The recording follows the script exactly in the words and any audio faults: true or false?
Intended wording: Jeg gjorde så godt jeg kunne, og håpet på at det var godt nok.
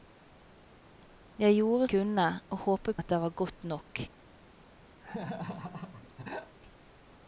false